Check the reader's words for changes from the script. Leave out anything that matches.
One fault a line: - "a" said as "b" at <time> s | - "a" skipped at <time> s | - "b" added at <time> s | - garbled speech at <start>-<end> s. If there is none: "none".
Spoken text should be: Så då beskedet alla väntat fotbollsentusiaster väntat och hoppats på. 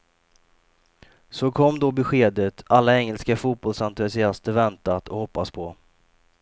- "kom" added at 1.5 s
- "väntat" said as "engelska" at 3.0 s